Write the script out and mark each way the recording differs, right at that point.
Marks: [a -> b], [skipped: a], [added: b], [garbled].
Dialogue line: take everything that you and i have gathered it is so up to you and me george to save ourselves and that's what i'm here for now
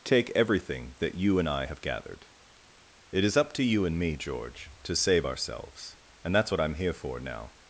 take everything that you and i have gathered it is [skipped: so] up to you and me george to save ourselves and that's what i'm here for now